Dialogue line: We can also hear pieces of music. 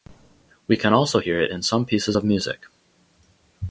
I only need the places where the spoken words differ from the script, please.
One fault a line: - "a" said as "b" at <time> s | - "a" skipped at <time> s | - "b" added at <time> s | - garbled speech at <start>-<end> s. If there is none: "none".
- "it in some" added at 1.4 s